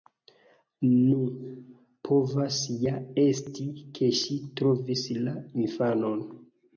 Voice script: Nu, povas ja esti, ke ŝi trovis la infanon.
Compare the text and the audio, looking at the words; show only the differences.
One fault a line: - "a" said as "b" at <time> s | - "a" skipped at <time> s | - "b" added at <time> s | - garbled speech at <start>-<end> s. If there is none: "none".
none